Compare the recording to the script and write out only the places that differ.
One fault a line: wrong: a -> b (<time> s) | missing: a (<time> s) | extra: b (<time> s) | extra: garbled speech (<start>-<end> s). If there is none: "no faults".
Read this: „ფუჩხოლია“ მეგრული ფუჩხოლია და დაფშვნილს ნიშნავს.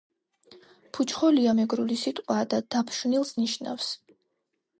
wrong: ფუჩხოლია -> სიტყვაა (2.0 s)